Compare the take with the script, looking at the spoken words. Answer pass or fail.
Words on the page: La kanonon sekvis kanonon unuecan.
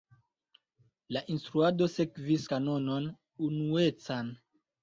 fail